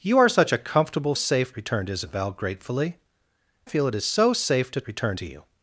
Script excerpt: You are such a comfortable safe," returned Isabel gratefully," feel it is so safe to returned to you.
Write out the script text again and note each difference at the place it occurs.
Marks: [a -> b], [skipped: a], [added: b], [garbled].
You are such a comfortable safe," returned Isabel gratefully," feel it is so safe to returned to you.